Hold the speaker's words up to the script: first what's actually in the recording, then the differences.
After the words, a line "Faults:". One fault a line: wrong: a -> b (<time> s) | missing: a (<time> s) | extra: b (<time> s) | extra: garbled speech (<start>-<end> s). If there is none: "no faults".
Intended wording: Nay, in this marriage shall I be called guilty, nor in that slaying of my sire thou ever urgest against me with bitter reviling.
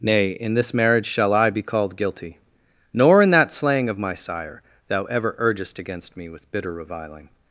Nay, in this marriage shall I be called guilty, nor in that slaying of my sire thou ever urgest against me with bitter reviling.
Faults:
no faults